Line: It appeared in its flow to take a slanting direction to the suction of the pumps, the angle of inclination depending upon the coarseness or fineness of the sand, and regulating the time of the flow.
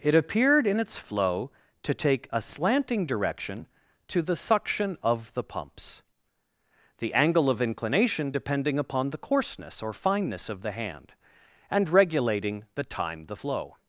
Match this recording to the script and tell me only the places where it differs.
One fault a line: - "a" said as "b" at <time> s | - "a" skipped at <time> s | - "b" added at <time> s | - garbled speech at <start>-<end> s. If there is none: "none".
- "sand" said as "hand" at 10.7 s
- "of" skipped at 13.3 s